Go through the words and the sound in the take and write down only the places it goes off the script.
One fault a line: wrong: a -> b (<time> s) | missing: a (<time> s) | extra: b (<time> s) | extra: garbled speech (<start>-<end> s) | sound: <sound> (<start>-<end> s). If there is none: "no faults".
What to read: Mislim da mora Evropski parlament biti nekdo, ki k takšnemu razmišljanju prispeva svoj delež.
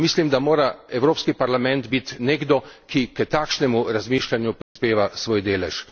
sound: dropout (4.6-4.8 s)